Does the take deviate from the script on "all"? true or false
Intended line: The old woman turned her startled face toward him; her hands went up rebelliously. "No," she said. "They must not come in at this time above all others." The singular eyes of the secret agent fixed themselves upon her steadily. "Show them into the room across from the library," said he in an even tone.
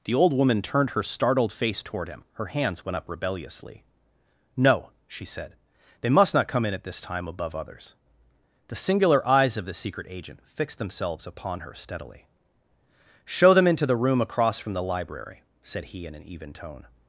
true